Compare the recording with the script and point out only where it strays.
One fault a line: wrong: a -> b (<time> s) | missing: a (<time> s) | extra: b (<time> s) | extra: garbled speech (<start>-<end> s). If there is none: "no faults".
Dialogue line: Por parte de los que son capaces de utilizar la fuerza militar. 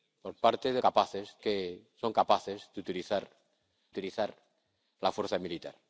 wrong: los -> capaces (0.8 s)
extra: utilizar (3.9 s)